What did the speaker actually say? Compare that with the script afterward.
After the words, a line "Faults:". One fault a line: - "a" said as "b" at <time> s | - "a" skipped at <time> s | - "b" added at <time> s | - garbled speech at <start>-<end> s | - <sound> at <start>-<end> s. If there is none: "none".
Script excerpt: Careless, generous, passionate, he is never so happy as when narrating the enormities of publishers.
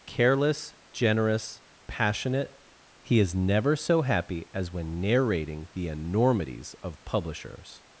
Careless, generous, passionate, he is never so happy as when narrating the enormities of publishers.
Faults:
none